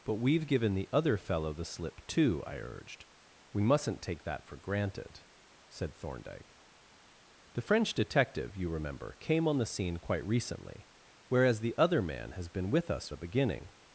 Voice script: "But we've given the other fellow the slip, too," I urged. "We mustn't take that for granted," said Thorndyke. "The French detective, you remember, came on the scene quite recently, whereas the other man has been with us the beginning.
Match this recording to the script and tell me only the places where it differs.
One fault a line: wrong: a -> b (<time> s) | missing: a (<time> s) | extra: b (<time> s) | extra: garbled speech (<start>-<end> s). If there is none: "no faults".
no faults